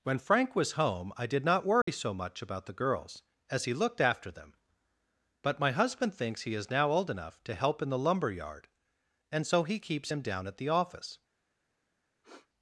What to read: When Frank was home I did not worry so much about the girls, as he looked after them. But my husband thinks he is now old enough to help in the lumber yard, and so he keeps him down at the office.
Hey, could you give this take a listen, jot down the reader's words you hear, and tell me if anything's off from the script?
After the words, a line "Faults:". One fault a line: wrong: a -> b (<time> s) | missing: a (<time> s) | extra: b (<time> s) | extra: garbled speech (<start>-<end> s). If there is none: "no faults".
When Frank was home I did not worry so much about the girls, as he looked after them. But my husband thinks he is now old enough to help in the lumber yard, and so he keeps him down at the office.
Faults:
no faults